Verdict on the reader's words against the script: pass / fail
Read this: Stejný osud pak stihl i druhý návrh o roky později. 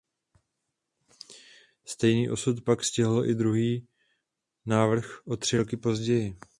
fail